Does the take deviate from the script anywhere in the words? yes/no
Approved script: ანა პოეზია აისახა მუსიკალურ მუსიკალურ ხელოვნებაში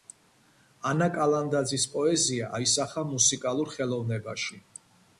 yes